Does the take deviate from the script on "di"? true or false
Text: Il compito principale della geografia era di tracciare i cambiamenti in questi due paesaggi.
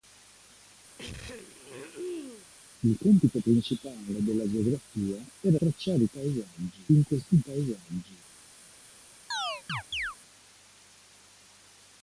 true